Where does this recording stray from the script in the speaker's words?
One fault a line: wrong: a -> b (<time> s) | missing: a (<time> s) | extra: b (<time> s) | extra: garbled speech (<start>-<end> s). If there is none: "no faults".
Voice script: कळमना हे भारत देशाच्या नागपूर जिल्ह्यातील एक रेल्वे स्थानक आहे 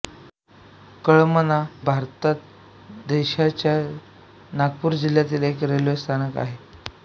missing: हे (1.6 s)